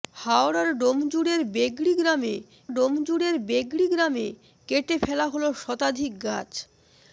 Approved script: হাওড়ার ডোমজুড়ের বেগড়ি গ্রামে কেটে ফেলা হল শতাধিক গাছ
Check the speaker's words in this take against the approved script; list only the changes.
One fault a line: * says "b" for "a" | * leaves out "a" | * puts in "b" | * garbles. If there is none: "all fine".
* puts in "ডোমজুড়ের বেগড়ি গ্রামে"